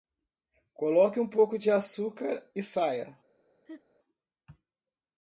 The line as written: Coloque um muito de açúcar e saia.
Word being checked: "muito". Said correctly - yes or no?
no